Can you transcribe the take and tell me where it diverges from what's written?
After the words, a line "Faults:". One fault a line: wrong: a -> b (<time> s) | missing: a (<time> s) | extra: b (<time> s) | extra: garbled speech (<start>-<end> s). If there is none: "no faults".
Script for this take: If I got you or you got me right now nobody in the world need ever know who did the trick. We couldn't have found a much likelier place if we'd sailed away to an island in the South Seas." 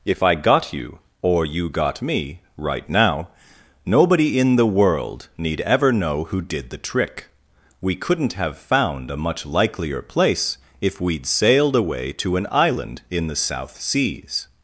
If I got you or you got me right now nobody in the world need ever know who did the trick. We couldn't have found a much likelier place if we'd sailed away to an island in the South Seas."
Faults:
no faults